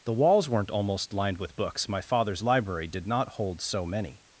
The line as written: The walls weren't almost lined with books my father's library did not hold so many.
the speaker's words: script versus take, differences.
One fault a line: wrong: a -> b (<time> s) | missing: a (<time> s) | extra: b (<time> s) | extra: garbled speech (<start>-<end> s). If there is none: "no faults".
no faults